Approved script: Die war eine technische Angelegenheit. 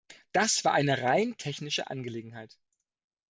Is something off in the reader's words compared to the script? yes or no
yes